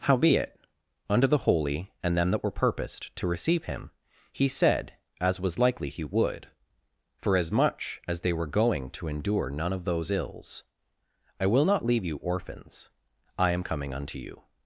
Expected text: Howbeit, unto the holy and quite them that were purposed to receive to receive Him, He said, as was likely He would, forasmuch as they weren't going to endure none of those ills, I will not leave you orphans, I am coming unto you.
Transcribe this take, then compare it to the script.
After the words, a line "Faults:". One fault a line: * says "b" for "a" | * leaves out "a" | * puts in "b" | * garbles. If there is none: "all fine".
Howbeit, unto the holy and them that were purposed to receive Him, He said, as was likely He would, forasmuch as they were going to endure none of those ills, I will not leave you orphans, I am coming unto you.
Faults:
* leaves out "quite"
* leaves out "to receive"
* says "were" for "weren't"